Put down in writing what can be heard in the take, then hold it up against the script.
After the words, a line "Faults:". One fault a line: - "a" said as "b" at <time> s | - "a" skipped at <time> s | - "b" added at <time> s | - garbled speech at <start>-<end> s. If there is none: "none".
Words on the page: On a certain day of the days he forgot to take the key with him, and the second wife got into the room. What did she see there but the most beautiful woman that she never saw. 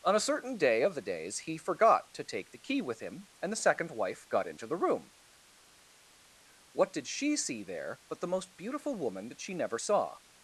On a certain day of the days he forgot to take the key with him, and the second wife got into the room. What did she see there but the most beautiful woman that she never saw.
Faults:
none